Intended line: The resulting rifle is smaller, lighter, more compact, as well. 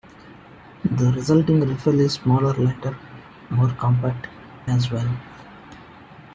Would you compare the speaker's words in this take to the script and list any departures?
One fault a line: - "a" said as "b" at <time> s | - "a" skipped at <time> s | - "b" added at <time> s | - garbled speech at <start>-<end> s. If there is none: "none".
none